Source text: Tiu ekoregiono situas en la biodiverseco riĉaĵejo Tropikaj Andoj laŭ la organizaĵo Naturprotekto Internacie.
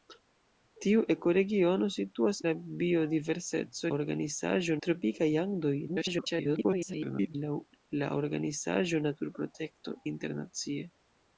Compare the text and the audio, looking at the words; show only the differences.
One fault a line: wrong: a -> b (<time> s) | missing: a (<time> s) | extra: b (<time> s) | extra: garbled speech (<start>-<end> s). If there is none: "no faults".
missing: en (2.4 s)
wrong: riĉaĵejo -> organizaĵo (4.0 s)
extra: garbled speech (5.9-7.4 s)